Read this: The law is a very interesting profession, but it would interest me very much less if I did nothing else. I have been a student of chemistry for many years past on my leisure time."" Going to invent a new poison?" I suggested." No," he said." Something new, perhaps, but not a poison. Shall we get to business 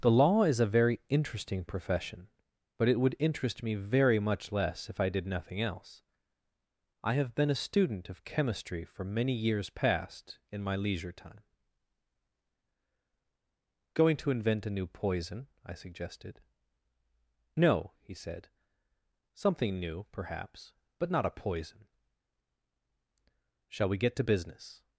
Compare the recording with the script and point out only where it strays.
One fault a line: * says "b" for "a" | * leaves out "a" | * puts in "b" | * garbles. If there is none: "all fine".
* says "in" for "on"